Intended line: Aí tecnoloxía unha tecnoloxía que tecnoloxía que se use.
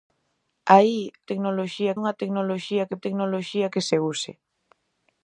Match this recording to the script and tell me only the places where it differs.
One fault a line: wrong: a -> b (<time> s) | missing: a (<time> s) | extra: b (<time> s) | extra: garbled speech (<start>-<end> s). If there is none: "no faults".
no faults